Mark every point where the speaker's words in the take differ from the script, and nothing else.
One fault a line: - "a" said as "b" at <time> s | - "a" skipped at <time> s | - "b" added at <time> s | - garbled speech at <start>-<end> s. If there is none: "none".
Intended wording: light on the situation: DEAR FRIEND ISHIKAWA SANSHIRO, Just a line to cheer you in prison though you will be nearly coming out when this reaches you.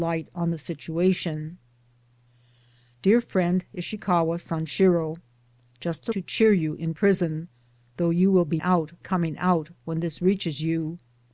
- "line" skipped at 6.1 s
- "nearly" said as "out" at 8.6 s